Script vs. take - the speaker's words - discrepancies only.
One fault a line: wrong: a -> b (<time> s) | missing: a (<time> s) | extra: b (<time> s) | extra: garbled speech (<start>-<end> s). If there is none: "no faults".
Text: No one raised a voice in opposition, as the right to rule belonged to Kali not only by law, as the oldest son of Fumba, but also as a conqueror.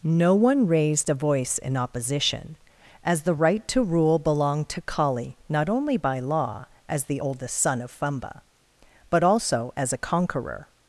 no faults